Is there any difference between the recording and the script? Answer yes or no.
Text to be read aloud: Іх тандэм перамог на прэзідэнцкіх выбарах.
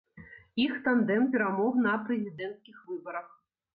no